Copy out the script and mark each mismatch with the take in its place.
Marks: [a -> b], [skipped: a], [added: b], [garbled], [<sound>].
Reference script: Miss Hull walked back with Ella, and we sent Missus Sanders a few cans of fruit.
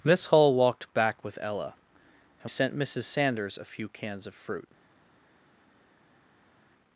Miss Hull walked back with Ella, and [skipped: we] sent Missus Sanders a few cans of fruit.